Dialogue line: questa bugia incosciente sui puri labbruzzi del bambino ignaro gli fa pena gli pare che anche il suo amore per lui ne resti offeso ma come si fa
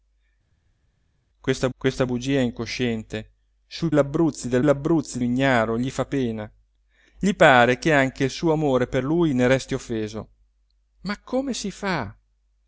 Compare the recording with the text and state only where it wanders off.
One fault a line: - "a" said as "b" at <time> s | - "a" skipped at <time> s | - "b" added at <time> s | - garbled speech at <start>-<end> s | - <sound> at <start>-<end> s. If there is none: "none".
- "questa" added at 1.8 s
- "puri" skipped at 3.9 s
- "bambino" said as "labbruzzi" at 4.6 s